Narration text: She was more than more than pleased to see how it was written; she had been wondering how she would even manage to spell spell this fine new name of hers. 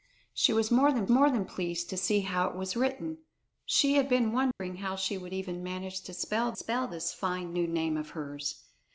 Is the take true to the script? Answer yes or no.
yes